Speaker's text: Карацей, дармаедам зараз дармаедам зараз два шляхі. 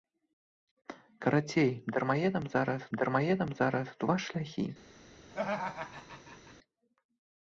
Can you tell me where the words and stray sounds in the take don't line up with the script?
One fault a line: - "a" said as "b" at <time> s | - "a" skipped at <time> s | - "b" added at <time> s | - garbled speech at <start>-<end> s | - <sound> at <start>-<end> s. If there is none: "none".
- laugh at 5.3-6.5 s